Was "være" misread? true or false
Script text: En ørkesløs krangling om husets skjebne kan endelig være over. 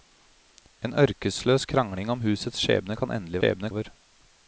true